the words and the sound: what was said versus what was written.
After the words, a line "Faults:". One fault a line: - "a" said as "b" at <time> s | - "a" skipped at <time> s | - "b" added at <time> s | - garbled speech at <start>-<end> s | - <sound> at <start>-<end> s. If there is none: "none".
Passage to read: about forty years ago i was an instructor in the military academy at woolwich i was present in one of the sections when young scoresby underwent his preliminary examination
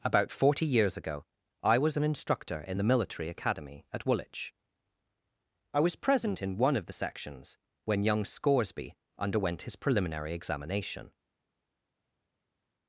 about forty years ago i was an instructor in the military academy at woolwich i was present in one of the sections when young scoresby underwent his preliminary examination
Faults:
none